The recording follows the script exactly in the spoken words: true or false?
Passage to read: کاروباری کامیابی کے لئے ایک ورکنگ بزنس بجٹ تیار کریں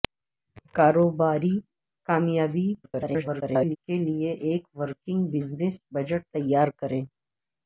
false